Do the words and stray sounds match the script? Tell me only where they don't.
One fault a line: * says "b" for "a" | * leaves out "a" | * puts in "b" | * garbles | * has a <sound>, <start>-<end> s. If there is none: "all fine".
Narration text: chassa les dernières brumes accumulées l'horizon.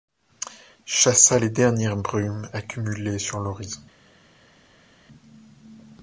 * puts in "sur"